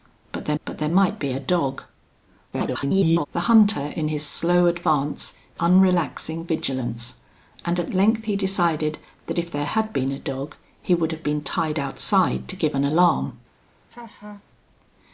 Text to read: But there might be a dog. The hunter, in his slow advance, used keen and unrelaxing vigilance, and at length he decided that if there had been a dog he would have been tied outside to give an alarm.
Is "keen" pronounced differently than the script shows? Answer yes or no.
yes